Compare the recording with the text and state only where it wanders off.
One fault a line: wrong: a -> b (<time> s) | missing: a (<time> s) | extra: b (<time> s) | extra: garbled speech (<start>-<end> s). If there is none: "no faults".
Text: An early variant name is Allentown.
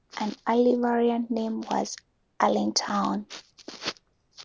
wrong: is -> was (1.6 s)